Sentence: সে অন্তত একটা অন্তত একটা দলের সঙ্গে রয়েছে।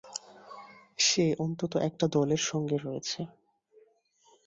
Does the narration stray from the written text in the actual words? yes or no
yes